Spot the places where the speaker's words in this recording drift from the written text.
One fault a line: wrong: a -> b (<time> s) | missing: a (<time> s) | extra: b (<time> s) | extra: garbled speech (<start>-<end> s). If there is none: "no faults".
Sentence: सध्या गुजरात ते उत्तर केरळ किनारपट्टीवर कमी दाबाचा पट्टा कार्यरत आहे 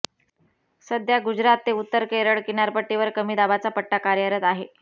no faults